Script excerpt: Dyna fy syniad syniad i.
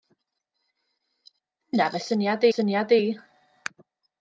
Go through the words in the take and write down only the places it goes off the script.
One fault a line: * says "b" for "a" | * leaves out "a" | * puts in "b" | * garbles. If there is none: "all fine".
all fine